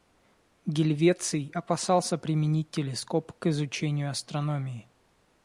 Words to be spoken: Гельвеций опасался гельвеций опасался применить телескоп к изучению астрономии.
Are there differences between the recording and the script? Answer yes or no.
yes